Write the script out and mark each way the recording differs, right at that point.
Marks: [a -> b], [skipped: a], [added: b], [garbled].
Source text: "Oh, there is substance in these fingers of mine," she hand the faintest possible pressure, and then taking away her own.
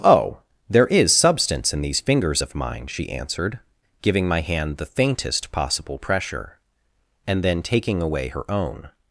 "Oh, there is substance in these fingers of mine," she [added: answered giving my] hand the faintest possible pressure, and then taking away her own.